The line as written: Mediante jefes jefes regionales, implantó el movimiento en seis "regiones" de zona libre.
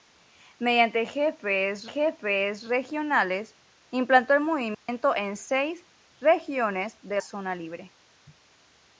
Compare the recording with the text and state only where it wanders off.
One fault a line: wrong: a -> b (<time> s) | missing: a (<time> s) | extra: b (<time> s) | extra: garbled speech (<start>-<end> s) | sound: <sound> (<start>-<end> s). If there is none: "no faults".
sound: dropout (4.7-4.9 s)